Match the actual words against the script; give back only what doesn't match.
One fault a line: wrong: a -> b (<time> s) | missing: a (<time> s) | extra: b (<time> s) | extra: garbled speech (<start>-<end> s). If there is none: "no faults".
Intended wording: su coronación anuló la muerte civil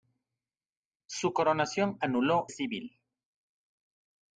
missing: la muerte (2.5 s)